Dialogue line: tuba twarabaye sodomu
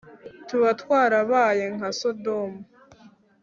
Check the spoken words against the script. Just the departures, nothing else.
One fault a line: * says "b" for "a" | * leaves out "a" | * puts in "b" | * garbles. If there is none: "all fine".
* puts in "nka"